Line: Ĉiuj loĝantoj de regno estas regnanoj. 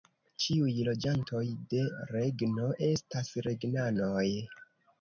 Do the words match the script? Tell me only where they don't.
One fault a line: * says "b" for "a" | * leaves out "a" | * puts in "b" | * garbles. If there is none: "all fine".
all fine